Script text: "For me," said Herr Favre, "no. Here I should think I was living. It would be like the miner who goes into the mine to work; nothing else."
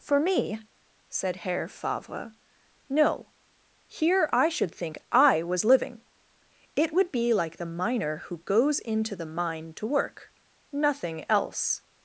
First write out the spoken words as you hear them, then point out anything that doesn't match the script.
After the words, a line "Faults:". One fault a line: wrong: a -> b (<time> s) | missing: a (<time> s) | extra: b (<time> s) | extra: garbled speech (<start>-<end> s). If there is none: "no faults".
"For me," said Herr Favre, "no. Here I should think I was living. It would be like the miner who goes into the mine to work; nothing else."
Faults:
no faults